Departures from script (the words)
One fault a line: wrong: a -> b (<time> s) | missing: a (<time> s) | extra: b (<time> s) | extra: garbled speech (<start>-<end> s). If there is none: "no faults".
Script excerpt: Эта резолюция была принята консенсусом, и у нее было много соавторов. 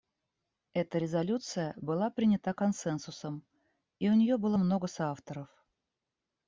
no faults